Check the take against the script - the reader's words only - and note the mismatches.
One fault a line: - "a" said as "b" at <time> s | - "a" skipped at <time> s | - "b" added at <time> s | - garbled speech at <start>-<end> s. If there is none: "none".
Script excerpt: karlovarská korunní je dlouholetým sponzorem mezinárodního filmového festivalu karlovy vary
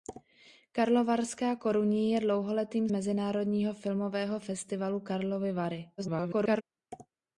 - "sponzorem" skipped at 2.9 s
- garbled speech at 6.0-6.6 s